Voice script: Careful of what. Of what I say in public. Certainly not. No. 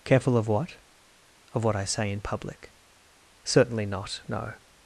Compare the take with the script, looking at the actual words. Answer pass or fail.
pass